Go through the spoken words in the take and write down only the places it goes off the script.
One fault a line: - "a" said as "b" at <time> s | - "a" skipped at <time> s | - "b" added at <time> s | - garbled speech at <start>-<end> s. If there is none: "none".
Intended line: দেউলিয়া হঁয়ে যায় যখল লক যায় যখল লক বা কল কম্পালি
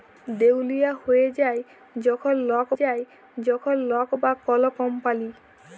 none